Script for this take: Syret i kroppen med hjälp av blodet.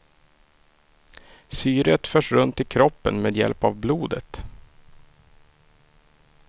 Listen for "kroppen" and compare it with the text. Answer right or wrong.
right